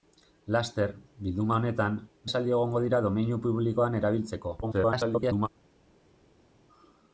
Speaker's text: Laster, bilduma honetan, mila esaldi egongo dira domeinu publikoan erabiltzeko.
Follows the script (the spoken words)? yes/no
no